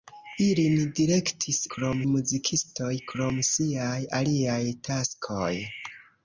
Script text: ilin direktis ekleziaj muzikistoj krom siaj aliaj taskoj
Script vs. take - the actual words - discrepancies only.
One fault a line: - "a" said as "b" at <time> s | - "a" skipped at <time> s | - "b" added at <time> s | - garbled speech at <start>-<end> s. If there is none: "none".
- "ekleziaj" said as "krom" at 1.8 s